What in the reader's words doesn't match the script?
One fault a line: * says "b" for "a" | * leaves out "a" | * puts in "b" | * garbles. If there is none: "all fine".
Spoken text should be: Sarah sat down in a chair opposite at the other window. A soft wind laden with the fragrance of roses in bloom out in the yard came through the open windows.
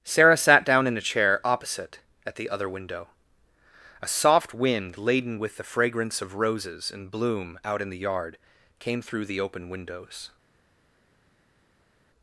all fine